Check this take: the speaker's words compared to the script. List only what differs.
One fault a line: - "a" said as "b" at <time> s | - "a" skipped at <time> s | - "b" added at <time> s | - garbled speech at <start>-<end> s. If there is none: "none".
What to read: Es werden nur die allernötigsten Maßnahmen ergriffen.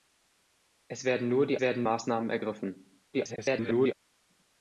- "allernötigsten" said as "werden" at 1.6 s
- garbled speech at 3.1-3.9 s